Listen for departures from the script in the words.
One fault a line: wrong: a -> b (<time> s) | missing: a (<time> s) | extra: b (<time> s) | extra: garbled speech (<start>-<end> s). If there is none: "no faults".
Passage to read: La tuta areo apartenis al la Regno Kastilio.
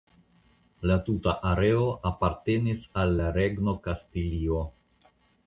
no faults